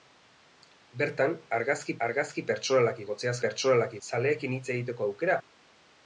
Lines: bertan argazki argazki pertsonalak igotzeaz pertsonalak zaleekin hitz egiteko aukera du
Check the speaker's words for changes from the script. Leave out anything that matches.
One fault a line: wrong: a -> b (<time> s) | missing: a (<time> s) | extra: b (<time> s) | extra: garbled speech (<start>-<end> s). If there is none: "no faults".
no faults